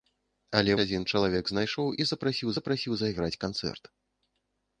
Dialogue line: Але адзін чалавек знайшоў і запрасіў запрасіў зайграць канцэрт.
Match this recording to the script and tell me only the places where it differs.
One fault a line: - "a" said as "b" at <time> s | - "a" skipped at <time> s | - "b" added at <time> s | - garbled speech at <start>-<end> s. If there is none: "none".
none